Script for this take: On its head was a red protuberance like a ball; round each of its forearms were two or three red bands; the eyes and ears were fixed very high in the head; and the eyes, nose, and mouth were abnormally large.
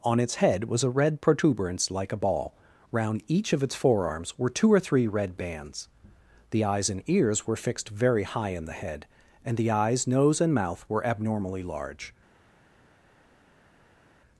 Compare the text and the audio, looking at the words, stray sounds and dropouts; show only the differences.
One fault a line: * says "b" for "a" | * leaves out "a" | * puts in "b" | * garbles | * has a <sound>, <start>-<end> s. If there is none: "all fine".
all fine